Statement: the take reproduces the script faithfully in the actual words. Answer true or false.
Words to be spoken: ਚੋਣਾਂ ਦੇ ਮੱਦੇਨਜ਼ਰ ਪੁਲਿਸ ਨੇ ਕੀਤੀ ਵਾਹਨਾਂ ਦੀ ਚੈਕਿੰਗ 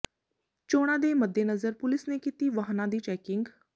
true